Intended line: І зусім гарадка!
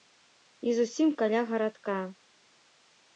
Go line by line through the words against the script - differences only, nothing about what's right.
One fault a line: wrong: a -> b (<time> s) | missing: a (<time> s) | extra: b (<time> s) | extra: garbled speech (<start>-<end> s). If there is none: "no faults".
extra: каля (1.2 s)